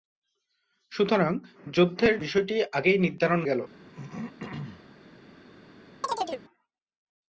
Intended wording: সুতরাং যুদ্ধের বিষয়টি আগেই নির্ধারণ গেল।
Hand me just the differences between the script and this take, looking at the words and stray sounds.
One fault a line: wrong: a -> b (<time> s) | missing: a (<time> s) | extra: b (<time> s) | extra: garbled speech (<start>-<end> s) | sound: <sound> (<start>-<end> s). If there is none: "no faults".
sound: throat clearing (3.7-5.0 s)
sound: chirp (6.0-6.4 s)